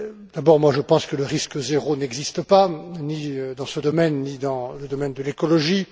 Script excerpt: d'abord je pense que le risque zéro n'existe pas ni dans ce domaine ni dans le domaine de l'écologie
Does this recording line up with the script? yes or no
yes